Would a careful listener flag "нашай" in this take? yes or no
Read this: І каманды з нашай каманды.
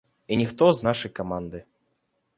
no